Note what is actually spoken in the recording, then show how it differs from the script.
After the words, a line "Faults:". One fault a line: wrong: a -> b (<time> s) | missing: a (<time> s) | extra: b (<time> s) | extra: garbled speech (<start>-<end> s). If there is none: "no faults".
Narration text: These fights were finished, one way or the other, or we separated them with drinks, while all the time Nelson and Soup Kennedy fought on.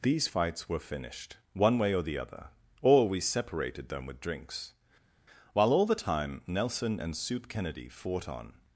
These fights were finished, one way or the other, or we separated them with drinks, while all the time Nelson and Soup Kennedy fought on.
Faults:
no faults